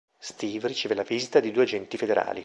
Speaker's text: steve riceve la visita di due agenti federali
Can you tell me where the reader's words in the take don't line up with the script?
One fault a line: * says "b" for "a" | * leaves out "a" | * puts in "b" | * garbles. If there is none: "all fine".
all fine